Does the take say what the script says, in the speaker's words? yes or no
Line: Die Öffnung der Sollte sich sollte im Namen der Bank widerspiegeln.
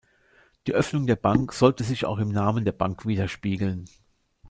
no